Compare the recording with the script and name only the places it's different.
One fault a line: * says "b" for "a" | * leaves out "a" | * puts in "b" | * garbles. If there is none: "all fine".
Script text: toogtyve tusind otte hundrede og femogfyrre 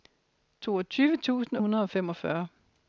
* leaves out "otte"